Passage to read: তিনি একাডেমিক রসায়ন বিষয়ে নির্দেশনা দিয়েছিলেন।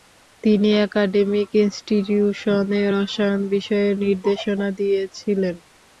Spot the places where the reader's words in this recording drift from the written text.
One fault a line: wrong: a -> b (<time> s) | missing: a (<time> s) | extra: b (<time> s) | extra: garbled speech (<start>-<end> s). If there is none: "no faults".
extra: ইনস্টিটিউশনে (1.6 s)